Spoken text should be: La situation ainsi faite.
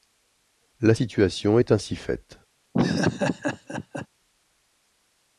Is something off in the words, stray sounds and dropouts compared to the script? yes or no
yes